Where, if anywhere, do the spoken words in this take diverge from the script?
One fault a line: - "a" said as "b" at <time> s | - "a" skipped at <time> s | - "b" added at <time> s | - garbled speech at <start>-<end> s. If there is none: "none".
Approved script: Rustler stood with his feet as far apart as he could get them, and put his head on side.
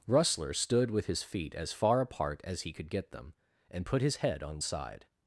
none